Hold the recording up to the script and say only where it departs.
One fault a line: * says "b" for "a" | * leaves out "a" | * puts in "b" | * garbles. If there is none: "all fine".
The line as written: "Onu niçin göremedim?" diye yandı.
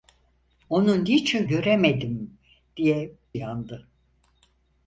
all fine